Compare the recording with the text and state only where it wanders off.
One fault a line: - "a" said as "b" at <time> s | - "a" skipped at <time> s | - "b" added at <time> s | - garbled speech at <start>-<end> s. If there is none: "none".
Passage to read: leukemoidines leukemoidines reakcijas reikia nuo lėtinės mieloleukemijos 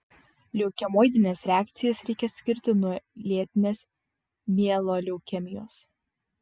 - "leukemoidines" skipped at 1.4 s
- "skirti" added at 2.4 s